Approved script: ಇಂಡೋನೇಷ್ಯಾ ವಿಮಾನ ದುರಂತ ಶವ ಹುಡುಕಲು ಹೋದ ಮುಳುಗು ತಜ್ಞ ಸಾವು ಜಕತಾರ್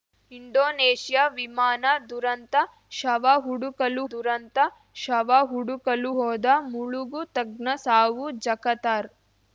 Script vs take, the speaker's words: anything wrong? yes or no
yes